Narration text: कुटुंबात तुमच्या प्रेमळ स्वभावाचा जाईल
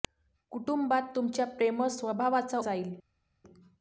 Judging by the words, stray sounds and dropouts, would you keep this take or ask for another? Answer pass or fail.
pass